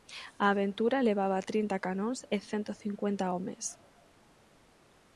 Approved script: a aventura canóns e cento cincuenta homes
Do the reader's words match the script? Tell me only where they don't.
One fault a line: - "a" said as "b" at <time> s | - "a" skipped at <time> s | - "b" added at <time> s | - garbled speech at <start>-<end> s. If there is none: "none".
- "levaba trinta" added at 1.1 s